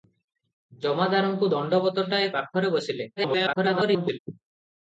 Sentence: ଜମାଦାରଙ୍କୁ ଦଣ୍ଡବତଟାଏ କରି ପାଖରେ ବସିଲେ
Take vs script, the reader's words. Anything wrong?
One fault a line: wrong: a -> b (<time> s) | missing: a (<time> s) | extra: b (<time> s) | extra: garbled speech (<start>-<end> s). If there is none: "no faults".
missing: କରି (2.3 s)
extra: garbled speech (3.2-4.2 s)